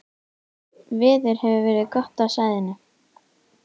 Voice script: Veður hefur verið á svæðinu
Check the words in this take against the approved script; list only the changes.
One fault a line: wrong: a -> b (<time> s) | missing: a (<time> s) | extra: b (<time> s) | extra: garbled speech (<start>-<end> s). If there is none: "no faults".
extra: gott (2.0 s)